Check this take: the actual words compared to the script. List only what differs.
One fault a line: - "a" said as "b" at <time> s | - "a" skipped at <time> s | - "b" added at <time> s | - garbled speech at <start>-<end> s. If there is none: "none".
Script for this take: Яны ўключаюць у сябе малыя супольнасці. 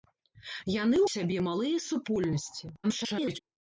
- "ўключаюць" skipped at 1.0 s
- garbled speech at 2.8-3.4 s